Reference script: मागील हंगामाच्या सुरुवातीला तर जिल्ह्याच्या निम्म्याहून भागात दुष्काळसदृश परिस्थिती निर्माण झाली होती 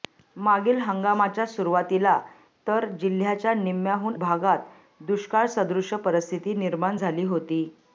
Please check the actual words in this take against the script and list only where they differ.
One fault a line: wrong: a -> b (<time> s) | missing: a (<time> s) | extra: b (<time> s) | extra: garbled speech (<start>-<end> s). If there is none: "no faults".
no faults